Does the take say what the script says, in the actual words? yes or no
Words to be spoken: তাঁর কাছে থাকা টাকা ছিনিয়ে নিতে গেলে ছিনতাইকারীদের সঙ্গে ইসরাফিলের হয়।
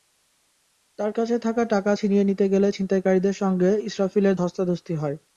no